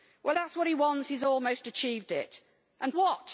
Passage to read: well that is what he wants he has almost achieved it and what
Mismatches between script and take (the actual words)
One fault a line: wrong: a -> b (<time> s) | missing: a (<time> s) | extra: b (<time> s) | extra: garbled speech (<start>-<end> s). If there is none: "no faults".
no faults